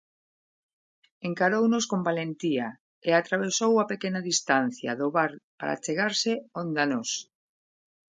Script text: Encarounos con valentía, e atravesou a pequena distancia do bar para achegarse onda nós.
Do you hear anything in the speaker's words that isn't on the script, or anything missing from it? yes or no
no